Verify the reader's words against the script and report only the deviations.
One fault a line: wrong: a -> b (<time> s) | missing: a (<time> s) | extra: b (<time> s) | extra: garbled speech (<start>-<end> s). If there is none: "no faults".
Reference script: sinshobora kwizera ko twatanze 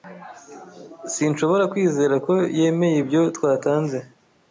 extra: yemeye ibyo (2.6 s)